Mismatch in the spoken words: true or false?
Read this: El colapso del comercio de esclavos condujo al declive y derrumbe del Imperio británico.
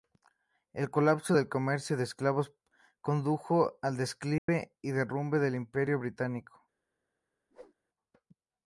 false